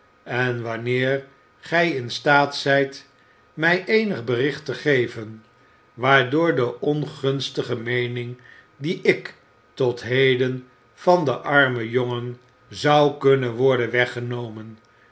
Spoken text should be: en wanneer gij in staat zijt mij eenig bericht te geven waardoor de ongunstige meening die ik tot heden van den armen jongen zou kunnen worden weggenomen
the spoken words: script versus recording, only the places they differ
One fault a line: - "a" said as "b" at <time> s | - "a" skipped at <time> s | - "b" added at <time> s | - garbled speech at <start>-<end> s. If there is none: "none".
none